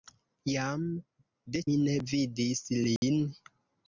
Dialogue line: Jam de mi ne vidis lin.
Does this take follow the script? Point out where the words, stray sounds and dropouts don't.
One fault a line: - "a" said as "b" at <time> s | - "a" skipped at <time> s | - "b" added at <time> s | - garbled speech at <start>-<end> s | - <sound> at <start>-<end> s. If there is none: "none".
- dropout at 3.0-3.0 s